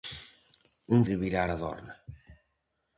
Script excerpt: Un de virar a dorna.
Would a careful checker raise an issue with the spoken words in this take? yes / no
no